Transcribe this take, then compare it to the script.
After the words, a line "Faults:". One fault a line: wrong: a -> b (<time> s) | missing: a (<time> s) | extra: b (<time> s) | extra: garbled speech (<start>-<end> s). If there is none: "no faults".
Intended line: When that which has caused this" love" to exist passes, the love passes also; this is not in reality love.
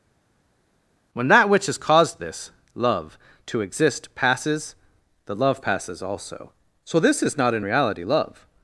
When that which has caused this" love" to exist passes, the love passes also; so this is not in reality love.
Faults:
extra: so (6.8 s)